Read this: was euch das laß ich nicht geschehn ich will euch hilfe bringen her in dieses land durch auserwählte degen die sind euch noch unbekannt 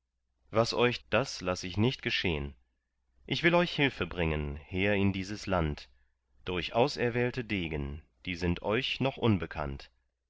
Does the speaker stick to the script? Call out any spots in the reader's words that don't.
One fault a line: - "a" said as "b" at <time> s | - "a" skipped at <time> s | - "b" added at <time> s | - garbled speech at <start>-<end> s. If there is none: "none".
none